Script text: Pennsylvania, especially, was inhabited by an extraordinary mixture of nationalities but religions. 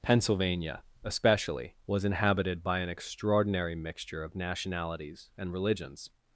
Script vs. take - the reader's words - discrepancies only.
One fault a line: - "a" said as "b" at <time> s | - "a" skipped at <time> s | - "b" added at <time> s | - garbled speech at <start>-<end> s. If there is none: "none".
- "but" said as "and" at 5.4 s